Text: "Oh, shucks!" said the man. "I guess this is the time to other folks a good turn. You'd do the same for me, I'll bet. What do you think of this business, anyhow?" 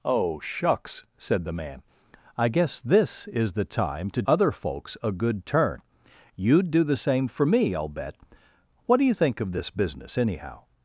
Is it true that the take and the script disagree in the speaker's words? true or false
false